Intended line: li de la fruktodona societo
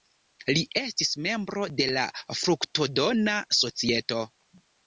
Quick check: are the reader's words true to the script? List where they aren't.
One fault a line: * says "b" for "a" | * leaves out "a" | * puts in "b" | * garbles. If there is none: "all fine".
* puts in "estis membro"